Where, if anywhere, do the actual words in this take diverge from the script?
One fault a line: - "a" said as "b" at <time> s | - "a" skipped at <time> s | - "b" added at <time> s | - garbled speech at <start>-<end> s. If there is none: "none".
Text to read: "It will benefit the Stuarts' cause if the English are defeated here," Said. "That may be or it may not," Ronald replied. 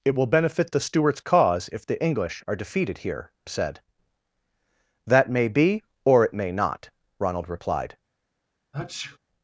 none